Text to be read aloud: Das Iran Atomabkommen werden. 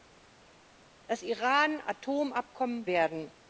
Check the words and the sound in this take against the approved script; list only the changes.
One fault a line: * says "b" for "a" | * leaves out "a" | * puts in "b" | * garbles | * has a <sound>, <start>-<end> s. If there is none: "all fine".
all fine